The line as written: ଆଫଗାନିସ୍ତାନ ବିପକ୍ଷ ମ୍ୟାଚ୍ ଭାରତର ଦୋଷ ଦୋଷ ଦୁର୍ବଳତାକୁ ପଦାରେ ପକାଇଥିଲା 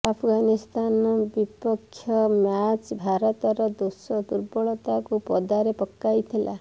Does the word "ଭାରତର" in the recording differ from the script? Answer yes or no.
no